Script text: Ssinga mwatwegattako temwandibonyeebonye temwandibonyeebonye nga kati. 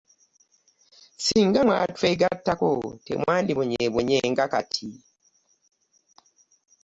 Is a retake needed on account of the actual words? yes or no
yes